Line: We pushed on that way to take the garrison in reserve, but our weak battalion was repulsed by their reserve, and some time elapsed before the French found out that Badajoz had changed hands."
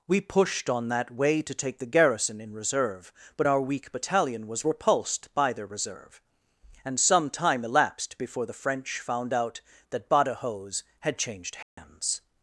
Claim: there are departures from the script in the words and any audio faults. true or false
true